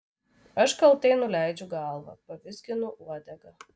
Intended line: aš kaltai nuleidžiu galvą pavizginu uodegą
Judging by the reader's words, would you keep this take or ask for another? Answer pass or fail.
pass